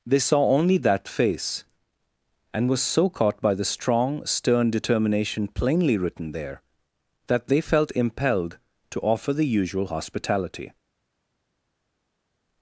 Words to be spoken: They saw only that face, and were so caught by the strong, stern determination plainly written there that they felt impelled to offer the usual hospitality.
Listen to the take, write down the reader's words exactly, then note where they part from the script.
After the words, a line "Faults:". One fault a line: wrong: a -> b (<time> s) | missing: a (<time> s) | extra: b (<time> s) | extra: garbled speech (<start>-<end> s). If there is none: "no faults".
They saw only that face, and were so caught by the strong, stern determination plainly written there that they felt impelled to offer the usual hospitality.
Faults:
no faults